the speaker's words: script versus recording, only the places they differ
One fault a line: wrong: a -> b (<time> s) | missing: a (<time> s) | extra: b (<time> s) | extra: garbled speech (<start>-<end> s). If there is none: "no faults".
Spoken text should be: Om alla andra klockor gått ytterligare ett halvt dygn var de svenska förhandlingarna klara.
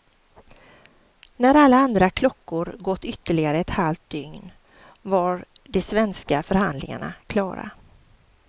wrong: Om -> När (1.4 s)